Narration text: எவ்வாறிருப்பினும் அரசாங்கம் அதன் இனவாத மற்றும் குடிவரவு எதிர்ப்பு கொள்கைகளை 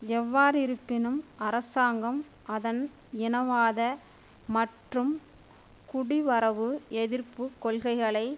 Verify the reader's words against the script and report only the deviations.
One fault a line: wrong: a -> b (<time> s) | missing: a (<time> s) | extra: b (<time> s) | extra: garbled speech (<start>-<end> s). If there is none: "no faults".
no faults